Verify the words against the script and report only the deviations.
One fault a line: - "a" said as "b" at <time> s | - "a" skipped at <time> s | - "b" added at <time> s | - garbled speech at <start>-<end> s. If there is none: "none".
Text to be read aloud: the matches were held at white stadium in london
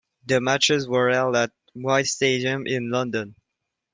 none